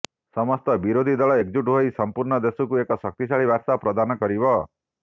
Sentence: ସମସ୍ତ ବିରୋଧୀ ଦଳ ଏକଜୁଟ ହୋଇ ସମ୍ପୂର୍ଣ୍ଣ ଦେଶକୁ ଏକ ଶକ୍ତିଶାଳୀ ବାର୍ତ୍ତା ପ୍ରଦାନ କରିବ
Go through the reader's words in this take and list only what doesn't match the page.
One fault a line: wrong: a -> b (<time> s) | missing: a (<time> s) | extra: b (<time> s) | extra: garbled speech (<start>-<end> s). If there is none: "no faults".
no faults